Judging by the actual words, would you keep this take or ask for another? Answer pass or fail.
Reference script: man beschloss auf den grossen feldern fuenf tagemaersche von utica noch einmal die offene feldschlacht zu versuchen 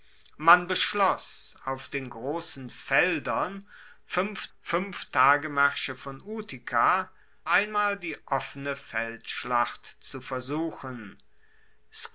fail